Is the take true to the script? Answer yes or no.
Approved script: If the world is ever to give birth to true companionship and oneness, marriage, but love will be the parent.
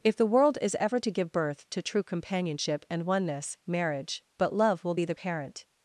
yes